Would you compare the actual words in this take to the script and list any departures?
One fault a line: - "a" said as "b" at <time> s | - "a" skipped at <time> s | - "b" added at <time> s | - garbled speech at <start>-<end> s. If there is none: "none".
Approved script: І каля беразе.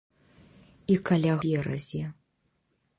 none